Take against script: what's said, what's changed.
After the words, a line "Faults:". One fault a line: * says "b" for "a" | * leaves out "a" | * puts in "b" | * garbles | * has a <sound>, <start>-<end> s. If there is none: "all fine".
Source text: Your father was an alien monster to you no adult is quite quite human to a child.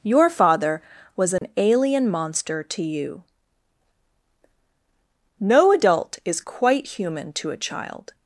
Your father was an alien monster to you no adult is quite human to a child.
Faults:
* has a dropout, 1.4-1.4 s
* leaves out "quite"